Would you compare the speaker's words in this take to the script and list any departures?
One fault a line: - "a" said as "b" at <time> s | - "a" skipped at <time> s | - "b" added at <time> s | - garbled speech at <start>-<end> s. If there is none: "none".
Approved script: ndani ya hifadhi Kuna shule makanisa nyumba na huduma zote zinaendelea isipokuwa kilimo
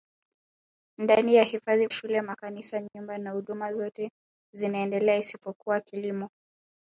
- "Kuna" skipped at 1.9 s